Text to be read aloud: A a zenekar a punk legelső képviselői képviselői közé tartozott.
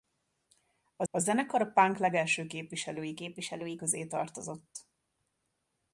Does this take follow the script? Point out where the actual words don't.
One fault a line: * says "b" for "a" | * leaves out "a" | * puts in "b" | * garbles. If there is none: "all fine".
all fine